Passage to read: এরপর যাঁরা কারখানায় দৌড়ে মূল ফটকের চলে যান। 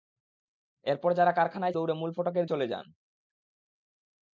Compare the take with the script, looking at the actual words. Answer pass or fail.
pass